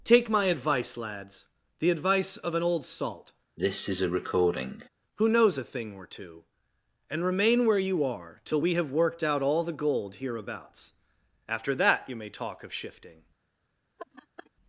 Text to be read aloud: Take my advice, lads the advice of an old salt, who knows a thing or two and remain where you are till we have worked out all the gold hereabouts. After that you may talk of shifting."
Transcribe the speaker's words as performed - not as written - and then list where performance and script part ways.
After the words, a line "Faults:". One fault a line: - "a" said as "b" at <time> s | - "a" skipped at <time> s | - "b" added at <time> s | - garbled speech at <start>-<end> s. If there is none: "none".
Take my advice, lads the advice of an old salt, who knows a thing or two and remain where you are till we have worked out all the gold hereabouts. After that you may talk of shifting."
Faults:
none